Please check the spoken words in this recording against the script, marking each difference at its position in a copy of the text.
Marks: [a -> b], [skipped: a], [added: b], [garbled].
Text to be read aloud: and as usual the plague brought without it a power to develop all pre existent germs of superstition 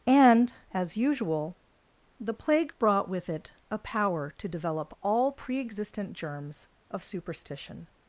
and as usual the plague brought [without -> with] it a power to develop all pre existent germs of superstition